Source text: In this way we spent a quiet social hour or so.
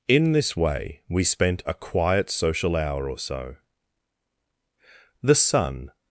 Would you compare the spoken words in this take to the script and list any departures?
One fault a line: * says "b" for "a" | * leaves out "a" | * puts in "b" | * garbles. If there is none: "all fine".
* puts in "The sun"